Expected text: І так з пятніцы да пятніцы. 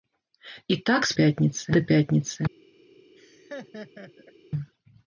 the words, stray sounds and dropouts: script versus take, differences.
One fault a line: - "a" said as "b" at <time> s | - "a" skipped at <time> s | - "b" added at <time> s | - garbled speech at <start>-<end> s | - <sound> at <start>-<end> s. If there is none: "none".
- laugh at 3.2-4.3 s